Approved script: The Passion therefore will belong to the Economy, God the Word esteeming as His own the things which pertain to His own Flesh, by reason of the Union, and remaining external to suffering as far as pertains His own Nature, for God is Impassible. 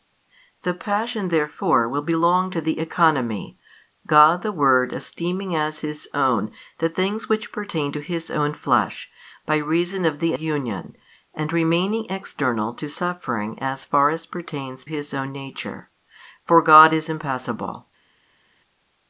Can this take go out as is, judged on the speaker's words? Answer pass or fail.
pass